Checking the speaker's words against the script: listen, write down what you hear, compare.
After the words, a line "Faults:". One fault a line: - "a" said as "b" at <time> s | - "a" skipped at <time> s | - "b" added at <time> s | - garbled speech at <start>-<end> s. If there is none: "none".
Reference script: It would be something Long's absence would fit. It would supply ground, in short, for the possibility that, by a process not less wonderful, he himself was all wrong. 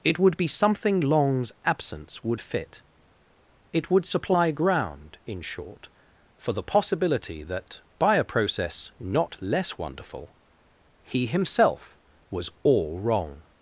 It would be something Long's absence would fit. It would supply ground, in short, for the possibility that, by a process not less wonderful, he himself was all wrong.
Faults:
none